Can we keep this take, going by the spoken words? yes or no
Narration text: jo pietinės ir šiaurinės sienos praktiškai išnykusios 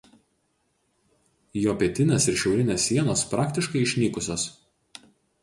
yes